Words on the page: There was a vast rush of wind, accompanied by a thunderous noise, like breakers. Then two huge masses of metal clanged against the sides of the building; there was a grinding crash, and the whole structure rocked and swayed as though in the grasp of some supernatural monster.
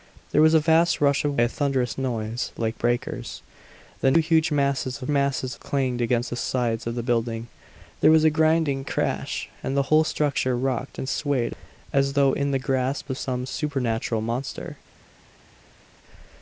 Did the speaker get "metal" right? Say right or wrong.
wrong